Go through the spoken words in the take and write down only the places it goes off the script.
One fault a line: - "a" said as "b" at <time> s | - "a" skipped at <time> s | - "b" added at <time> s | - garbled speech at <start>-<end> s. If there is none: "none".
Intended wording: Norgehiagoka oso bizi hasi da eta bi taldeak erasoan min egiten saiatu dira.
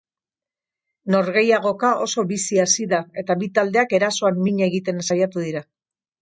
none